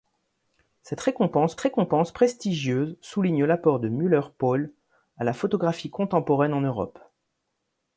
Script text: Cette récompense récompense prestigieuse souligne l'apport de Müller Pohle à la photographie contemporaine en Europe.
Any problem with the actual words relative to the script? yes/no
no